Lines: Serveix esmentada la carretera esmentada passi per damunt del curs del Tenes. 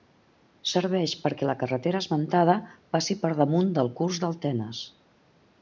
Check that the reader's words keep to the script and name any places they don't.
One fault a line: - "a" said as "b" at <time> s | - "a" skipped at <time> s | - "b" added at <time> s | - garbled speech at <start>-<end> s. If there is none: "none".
- "esmentada" said as "perquè" at 1.2 s